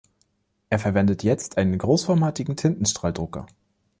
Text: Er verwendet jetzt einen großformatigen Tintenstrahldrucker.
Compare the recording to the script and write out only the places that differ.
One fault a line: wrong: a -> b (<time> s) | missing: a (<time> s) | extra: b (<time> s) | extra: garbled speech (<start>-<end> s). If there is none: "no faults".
no faults